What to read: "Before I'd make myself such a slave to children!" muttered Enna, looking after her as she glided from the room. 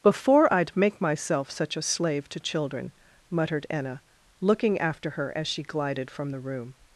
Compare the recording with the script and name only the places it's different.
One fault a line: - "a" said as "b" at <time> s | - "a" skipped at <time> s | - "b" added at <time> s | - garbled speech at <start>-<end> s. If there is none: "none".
none